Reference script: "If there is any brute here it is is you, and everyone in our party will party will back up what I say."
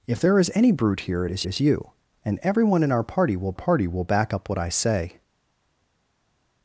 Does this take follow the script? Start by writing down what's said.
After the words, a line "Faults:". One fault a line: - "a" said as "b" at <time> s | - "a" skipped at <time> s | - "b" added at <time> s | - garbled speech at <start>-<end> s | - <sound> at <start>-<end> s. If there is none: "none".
"If there is any brute here it is is you, and everyone in our party will party will back up what I say."
Faults:
none